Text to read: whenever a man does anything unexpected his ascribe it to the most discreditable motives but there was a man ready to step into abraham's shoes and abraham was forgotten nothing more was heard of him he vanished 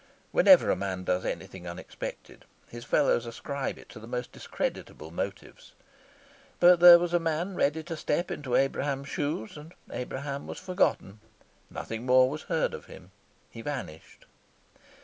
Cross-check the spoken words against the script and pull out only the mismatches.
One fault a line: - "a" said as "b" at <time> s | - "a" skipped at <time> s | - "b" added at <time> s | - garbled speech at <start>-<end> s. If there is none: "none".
- "fellows" added at 2.8 s